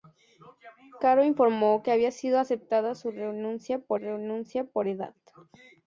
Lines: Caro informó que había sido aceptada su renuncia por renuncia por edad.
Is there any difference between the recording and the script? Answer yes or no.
no